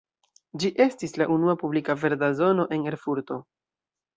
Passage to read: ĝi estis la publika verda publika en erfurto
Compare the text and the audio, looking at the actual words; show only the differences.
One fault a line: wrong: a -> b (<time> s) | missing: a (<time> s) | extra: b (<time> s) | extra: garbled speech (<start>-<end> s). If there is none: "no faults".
extra: unua (1.4 s)
wrong: publika -> zono (2.4 s)